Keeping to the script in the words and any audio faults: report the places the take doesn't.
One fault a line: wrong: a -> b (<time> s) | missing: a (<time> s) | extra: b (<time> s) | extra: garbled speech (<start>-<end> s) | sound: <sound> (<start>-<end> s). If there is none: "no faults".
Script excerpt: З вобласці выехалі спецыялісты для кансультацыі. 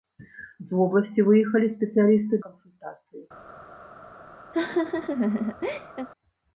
missing: для (2.4 s)
sound: laugh (4.5-6.1 s)